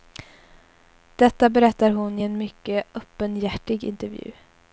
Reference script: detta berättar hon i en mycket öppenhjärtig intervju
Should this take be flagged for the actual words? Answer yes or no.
no